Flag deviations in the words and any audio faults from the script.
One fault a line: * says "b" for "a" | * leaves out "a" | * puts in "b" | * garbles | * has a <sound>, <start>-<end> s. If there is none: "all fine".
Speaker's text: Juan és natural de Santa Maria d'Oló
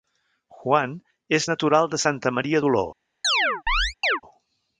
* has a chirp, 3.2-4.2 s